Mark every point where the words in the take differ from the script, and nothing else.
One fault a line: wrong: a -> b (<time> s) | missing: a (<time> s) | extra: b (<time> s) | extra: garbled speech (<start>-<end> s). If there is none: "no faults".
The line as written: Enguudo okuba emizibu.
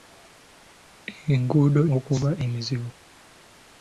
no faults